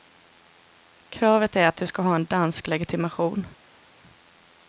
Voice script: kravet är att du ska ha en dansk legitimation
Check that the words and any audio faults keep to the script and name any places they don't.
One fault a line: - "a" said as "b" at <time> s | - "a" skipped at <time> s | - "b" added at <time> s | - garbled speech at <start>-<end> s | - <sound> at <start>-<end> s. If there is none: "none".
none